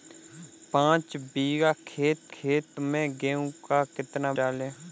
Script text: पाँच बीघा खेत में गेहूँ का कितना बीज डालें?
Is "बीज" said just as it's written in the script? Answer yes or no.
no